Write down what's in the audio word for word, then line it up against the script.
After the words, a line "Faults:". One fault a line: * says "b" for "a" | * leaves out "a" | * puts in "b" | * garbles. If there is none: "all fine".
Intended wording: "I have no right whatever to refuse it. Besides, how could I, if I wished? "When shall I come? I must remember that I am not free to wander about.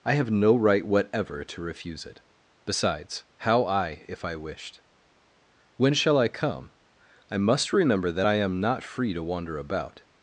"I have no right whatever to refuse it. Besides, how I, if I wished? "When shall I come? I must remember that I am not free to wander about.
Faults:
* leaves out "could"